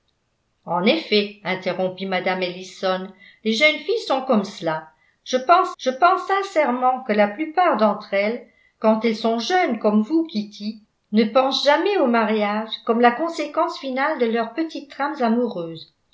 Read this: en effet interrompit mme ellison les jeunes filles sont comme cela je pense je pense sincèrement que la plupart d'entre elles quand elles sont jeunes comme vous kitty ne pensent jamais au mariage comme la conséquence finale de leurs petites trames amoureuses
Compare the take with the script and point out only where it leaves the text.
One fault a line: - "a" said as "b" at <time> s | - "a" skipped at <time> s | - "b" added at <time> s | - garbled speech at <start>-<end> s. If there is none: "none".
none